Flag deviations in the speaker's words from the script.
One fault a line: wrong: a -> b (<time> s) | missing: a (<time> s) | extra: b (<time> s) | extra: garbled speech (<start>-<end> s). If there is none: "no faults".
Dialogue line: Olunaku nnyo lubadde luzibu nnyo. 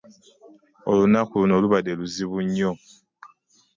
wrong: nnyo -> luno (1.4 s)